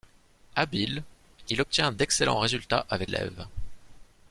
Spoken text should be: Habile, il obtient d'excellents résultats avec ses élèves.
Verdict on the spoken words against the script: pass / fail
fail